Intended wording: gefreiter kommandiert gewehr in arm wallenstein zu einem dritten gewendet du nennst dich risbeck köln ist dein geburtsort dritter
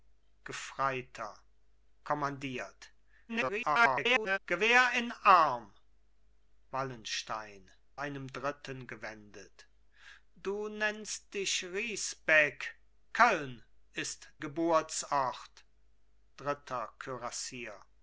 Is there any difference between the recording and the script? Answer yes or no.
yes